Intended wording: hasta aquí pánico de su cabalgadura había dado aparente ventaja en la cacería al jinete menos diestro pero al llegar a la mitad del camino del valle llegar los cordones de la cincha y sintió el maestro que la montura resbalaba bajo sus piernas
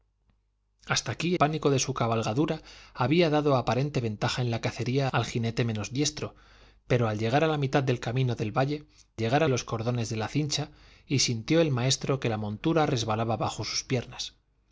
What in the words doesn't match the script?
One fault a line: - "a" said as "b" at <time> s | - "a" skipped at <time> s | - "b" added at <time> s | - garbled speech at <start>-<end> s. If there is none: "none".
none